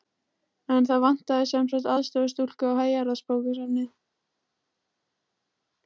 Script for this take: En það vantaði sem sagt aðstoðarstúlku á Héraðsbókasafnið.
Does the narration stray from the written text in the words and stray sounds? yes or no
no